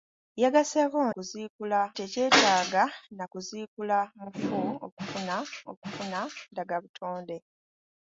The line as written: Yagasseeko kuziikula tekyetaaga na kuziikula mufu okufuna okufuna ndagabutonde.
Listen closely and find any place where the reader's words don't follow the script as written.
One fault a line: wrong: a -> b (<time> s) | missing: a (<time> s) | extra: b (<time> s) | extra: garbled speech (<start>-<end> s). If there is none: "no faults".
no faults